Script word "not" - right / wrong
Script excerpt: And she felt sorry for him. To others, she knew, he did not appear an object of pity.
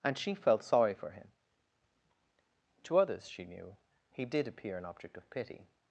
wrong